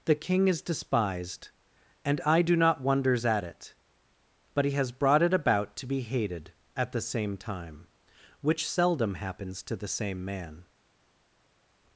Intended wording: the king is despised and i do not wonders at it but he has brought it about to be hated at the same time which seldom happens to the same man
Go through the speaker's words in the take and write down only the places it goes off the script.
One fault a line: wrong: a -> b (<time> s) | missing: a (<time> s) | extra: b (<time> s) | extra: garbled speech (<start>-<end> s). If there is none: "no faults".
no faults